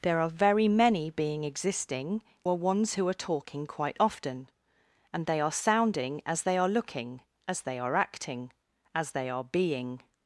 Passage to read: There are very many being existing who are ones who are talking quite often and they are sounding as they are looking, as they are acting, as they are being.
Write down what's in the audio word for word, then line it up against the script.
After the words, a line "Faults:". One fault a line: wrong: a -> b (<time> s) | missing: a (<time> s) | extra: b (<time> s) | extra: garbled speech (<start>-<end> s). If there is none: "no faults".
There are very many being existing are ones who are talking quite often and they are sounding as they are looking, as they are acting, as they are being.
Faults:
missing: who (2.2 s)